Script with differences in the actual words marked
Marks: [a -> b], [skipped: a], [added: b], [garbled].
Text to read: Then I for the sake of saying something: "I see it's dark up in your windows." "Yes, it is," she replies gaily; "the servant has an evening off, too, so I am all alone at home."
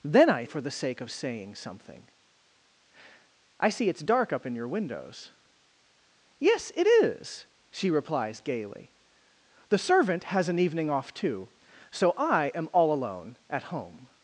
Then I for the sake of saying something: "I see it's dark up in your windows." "Yes, it is," she replies gaily; "the servant has an evening off, too, so I am all alone at home."